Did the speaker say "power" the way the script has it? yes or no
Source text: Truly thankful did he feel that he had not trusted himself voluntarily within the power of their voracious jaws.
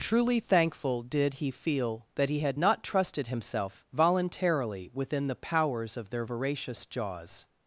no